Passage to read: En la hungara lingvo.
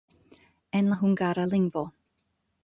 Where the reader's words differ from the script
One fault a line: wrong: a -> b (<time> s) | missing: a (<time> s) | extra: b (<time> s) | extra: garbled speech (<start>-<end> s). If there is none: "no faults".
no faults